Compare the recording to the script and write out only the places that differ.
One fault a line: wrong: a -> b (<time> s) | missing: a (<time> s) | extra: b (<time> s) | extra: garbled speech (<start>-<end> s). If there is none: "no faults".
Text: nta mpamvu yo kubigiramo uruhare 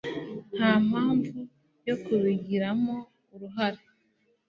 no faults